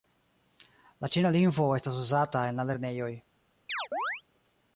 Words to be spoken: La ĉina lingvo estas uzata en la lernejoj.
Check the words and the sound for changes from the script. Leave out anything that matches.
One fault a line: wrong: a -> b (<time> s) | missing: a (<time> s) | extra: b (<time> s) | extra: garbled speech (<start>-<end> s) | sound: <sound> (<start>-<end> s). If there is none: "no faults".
sound: chirp (3.7-4.2 s)